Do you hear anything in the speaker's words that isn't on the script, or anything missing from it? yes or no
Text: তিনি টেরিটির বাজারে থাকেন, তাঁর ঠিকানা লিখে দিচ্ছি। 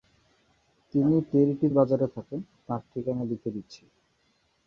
no